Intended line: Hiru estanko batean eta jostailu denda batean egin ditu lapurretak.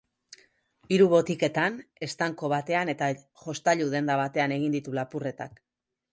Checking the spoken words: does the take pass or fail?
fail